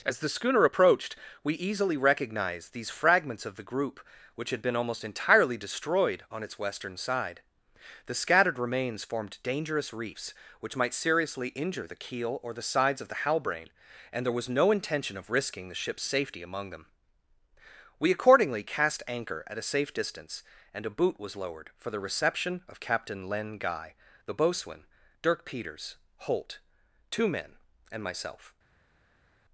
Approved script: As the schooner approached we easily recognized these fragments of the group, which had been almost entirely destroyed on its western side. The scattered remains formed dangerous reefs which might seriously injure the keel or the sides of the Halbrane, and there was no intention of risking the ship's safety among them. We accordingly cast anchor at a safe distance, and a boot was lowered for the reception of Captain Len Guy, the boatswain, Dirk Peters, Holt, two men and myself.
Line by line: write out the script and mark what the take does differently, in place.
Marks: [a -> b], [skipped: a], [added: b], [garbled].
As the schooner approached we easily recognized these fragments of the group, which had been almost entirely destroyed on its western side. The scattered remains formed dangerous reefs which might seriously injure the keel or the sides of the Halbrane, and there was no intention of risking the ship's safety among them. We accordingly cast anchor at a safe distance, and a boot was lowered for the reception of Captain Len Guy, the boatswain, Dirk Peters, Holt, two men and myself.